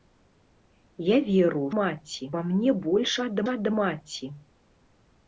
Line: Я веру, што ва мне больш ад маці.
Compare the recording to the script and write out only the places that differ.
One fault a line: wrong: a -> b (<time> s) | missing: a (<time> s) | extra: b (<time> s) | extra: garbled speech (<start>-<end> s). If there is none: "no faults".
wrong: што -> маці (1.8 s)
extra: ад (3.5 s)